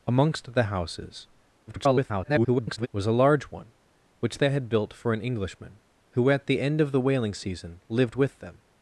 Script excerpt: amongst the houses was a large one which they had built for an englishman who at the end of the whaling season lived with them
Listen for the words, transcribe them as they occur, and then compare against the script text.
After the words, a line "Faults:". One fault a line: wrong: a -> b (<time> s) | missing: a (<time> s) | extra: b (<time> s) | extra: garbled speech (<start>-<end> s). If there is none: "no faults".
amongst the houses [garbled] was a large one which they had built for an englishman who at the end of the whaling season lived with them
Faults:
extra: garbled speech (1.7-2.9 s)